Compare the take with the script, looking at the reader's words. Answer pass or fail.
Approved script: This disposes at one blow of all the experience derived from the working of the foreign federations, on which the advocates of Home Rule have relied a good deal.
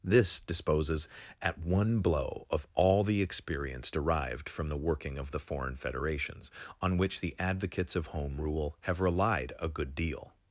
pass